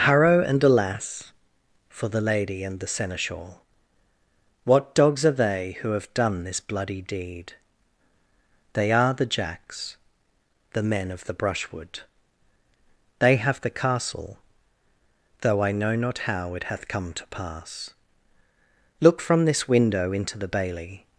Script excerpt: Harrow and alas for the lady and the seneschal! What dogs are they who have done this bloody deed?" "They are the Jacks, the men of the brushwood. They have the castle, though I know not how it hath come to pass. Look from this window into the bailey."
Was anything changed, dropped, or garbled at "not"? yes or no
no